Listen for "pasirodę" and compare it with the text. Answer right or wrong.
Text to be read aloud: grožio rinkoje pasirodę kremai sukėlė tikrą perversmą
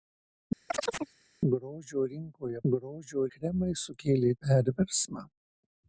wrong